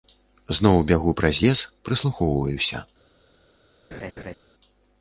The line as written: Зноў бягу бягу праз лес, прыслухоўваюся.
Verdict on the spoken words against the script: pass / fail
fail